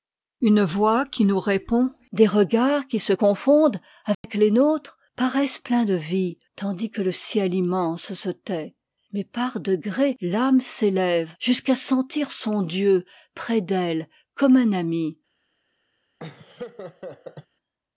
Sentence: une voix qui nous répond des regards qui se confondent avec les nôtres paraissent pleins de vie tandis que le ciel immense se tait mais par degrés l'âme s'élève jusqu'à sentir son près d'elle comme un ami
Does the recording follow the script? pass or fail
fail